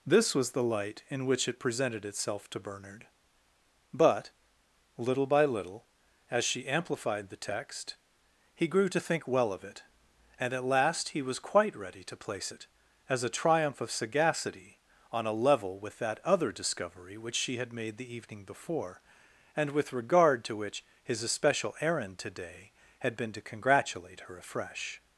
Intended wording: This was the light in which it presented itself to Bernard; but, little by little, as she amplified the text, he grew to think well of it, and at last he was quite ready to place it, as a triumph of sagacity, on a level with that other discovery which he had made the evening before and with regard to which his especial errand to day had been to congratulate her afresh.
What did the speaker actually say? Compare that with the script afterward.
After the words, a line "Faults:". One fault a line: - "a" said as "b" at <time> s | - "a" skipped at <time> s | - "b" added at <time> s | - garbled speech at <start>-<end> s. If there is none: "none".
This was the light in which it presented itself to Bernard; but, little by little, as she amplified the text, he grew to think well of it, and at last he was quite ready to place it, as a triumph of sagacity, on a level with that other discovery which she had made the evening before and with regard to which his especial errand to day had been to congratulate her afresh.
Faults:
- "he" said as "she" at 17.4 s